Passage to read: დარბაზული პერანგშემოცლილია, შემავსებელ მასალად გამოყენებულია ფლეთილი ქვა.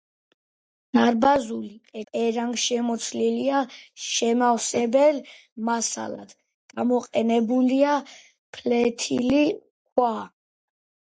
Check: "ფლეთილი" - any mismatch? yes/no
no